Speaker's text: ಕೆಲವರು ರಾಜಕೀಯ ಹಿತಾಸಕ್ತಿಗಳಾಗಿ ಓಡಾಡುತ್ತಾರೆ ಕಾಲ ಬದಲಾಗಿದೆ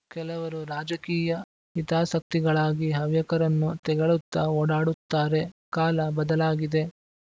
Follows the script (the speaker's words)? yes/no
no